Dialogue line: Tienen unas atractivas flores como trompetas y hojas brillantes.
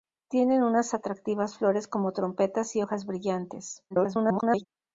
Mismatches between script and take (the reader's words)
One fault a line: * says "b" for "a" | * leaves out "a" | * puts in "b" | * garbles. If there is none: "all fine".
* garbles